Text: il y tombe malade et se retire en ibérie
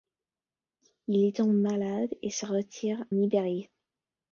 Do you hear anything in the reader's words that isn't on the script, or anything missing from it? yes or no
yes